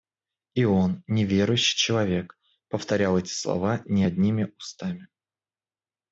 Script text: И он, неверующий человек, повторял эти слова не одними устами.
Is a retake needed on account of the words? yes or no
no